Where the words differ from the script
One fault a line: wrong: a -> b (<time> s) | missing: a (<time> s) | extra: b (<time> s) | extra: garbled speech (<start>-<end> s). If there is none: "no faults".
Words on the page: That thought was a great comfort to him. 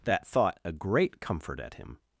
missing: was (0.6 s)
wrong: to -> at (1.6 s)